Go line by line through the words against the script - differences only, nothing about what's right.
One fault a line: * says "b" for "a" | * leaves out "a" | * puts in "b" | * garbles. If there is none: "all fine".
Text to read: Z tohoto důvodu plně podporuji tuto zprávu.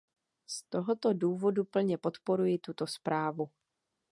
all fine